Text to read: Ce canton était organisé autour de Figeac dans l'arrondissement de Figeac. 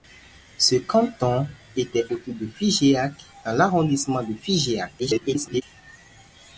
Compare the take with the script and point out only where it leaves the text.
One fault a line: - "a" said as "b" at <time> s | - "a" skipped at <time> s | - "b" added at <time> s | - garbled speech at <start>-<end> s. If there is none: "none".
- "organisé" skipped at 2.0 s
- garbled speech at 5.0-5.6 s